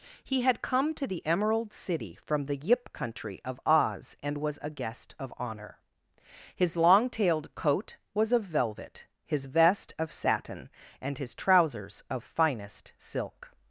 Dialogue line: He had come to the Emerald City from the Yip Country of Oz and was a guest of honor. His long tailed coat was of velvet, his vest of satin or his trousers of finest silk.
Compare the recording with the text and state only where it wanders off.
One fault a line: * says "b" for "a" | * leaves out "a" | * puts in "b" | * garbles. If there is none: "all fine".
* says "and" for "or"